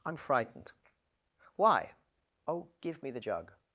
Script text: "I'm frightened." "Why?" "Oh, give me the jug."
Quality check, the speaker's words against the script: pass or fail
pass